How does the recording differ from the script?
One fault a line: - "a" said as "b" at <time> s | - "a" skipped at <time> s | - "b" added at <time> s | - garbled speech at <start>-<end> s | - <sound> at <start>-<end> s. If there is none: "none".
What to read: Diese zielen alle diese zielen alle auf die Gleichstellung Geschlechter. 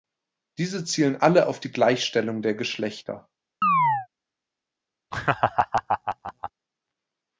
- "diese zielen alle" skipped at 1.5 s
- "der" added at 2.4 s
- chirp at 3.6-4.1 s
- laugh at 5.1-6.5 s